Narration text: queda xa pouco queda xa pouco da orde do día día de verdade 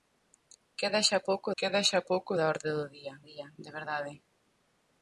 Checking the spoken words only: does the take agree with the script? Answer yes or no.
yes